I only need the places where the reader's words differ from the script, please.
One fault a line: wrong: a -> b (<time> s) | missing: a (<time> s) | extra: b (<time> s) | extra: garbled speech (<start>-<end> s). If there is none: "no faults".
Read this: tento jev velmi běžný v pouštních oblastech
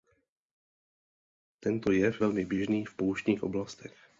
no faults